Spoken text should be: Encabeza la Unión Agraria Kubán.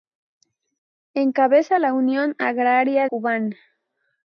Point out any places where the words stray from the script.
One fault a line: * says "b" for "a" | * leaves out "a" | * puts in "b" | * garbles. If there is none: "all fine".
all fine